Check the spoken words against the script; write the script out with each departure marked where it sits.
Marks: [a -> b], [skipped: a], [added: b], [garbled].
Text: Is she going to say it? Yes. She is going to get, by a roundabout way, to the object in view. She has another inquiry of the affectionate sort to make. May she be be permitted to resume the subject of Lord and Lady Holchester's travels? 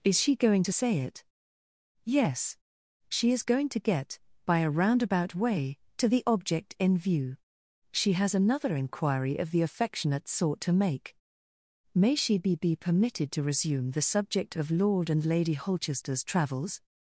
Is she going to say it? Yes. She is going to get, by a roundabout way, to the object in view. She has another inquiry of the affectionate sort to make. May she be be permitted to resume the subject of Lord and Lady Holchester's travels?